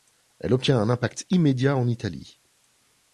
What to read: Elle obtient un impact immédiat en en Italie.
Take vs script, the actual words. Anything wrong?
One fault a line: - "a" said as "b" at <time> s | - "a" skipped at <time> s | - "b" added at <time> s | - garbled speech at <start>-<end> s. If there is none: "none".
- "en" skipped at 1.9 s